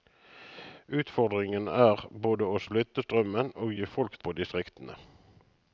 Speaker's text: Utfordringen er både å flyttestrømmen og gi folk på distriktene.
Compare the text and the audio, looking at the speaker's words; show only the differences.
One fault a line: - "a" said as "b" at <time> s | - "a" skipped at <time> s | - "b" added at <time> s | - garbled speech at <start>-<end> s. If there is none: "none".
none